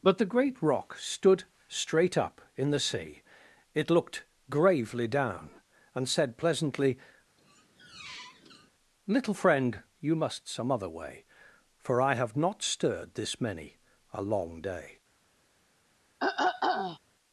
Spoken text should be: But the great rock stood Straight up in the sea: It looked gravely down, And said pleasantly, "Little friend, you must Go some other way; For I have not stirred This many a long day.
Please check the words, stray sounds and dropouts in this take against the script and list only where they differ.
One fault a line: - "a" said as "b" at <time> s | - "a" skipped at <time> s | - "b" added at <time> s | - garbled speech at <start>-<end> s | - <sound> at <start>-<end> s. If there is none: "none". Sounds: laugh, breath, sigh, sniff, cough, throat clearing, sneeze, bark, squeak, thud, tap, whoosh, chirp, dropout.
- squeak at 7.4-8.7 s
- "Go" skipped at 10.5 s
- throat clearing at 16.2-17.0 s